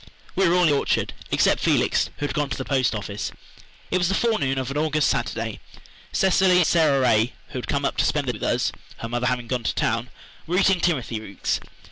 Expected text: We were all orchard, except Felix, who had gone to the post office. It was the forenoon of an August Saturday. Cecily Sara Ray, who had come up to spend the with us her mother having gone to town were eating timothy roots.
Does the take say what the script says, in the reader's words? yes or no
yes